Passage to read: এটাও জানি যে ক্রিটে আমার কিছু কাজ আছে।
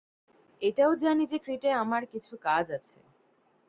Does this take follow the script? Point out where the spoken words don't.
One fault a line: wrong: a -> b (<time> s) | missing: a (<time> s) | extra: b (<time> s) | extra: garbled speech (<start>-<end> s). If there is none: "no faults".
no faults